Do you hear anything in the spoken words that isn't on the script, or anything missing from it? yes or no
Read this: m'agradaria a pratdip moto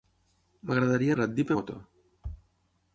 no